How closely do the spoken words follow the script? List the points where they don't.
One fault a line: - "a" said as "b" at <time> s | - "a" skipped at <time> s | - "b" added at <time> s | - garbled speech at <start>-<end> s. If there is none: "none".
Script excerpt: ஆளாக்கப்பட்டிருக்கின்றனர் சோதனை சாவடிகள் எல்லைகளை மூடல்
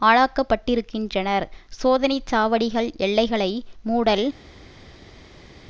none